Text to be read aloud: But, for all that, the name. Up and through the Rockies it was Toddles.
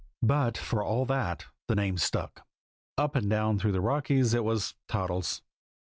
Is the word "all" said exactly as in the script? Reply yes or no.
yes